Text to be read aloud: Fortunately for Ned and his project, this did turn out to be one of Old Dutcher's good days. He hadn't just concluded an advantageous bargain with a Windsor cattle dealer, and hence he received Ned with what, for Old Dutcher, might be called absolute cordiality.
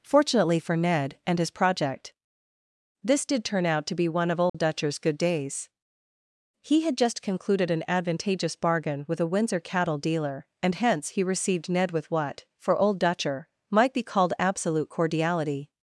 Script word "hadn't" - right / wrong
wrong